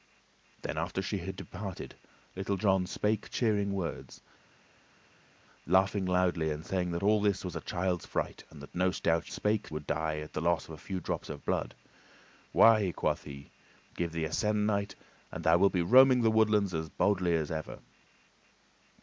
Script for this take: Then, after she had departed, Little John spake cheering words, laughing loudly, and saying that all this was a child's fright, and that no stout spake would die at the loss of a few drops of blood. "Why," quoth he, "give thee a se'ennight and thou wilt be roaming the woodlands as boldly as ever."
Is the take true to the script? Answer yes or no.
yes